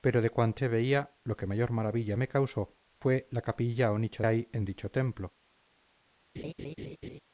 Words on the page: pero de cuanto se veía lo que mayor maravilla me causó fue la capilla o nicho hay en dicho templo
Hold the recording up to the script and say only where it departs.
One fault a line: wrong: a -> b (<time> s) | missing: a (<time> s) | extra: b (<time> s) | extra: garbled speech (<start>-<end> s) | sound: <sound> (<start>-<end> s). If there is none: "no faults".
sound: laugh (6.4-7.2 s)